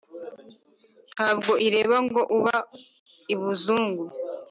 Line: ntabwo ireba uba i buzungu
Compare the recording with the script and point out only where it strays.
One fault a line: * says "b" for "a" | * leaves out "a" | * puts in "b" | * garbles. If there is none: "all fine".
* puts in "ngo"